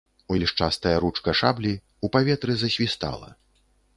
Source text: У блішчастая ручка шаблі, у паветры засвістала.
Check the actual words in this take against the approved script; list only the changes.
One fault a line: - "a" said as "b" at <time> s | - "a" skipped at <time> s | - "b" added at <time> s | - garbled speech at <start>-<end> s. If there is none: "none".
none